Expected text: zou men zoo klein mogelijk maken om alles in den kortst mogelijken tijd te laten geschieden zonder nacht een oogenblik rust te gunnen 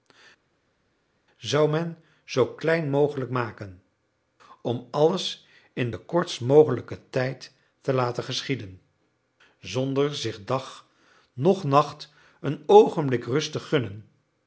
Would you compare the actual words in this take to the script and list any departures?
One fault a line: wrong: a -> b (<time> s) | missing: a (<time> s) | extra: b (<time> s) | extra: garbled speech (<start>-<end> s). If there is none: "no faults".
extra: zich dag noch (10.2 s)